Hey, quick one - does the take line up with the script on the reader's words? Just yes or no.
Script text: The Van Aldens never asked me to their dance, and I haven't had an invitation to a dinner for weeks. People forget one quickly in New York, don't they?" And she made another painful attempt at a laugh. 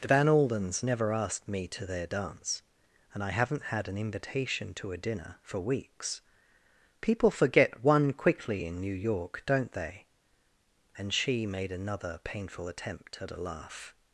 yes